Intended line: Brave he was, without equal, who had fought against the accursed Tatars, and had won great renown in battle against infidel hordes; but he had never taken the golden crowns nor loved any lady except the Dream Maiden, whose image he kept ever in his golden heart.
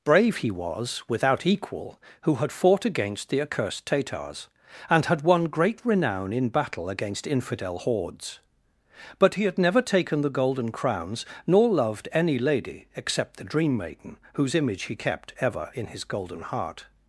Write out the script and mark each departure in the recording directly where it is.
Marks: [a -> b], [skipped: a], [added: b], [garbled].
Brave he was, without equal, who had fought against the accursed Tatars, and had won great renown in battle against infidel hordes; but he had never taken the golden crowns nor loved any lady except the Dream Maiden, whose image he kept ever in his golden heart.